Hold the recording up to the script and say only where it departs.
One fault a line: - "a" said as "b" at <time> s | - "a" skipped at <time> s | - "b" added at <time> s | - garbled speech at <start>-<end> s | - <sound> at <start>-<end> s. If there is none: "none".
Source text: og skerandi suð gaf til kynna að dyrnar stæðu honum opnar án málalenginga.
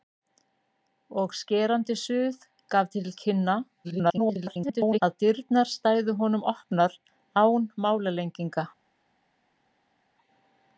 - garbled speech at 3.8-5.0 s